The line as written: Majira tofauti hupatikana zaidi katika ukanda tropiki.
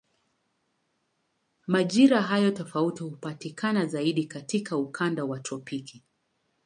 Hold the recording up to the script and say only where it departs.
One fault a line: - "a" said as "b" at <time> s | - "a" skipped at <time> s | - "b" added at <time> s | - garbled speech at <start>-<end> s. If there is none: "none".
- "hayo" added at 2.2 s
- "wa" added at 5.2 s